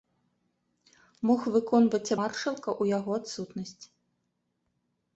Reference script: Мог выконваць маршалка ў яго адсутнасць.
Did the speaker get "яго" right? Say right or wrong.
right